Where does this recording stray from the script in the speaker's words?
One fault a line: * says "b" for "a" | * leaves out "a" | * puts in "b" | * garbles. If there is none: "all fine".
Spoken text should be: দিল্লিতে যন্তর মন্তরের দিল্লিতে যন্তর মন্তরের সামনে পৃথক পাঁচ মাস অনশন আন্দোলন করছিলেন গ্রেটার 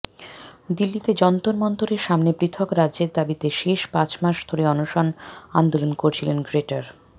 * says "সামনে পৃথক রাজ্যের দাবিতে শেষ" for "দিল্লিতে যন্তর মন্তরের সামনে পৃথক"
* puts in "ধরে"